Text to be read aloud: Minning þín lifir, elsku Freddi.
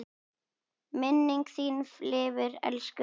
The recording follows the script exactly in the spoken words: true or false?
true